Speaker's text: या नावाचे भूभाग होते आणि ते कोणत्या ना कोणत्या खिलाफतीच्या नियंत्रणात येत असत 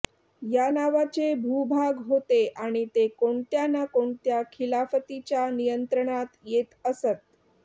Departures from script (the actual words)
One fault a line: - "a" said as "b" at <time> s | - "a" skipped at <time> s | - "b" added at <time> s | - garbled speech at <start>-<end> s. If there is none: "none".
none